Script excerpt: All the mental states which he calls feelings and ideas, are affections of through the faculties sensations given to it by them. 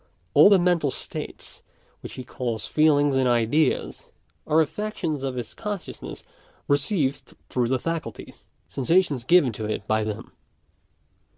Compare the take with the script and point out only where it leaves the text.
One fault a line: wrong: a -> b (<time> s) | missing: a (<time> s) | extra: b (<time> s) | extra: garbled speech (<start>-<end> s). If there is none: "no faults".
extra: his consciousness received (5.3 s)